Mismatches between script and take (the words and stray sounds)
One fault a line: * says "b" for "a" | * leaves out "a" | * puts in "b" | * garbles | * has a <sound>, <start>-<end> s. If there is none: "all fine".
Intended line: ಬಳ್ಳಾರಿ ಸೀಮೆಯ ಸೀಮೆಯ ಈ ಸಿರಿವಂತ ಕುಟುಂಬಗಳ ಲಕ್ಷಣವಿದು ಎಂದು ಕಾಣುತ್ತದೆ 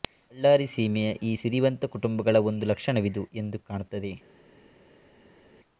* leaves out "ಸೀಮೆಯ"
* puts in "ಒಂದು"